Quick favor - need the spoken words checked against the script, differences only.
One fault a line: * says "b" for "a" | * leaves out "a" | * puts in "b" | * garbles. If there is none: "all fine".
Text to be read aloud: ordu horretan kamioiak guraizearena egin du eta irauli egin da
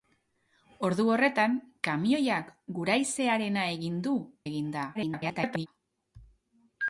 * leaves out "eta irauli"
* garbles